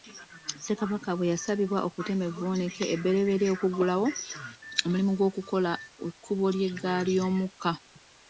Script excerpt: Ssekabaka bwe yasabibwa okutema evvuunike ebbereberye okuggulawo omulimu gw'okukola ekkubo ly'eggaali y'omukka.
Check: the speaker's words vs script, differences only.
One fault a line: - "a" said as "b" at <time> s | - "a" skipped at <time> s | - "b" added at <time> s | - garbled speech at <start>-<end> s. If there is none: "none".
none